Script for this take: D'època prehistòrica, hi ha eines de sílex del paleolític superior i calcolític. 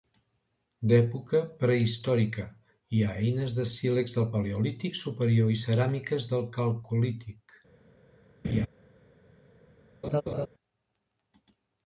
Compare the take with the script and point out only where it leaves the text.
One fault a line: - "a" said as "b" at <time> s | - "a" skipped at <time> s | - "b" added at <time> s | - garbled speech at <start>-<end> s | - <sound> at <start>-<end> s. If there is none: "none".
- "ceràmiques del" added at 5.6 s
- laugh at 8.4-8.7 s
- laugh at 10.0-10.5 s